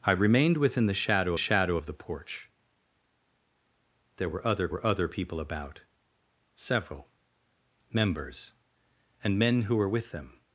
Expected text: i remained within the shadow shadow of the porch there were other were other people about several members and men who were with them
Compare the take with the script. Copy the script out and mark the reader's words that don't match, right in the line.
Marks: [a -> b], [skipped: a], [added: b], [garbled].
i remained within the shadow shadow of the porch there were other were other people about several members and men who were with them